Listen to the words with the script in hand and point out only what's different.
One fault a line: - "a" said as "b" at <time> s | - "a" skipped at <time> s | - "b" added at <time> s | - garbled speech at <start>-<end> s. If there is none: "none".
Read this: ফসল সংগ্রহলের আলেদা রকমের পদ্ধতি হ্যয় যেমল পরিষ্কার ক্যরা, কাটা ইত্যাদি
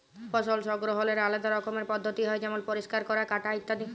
none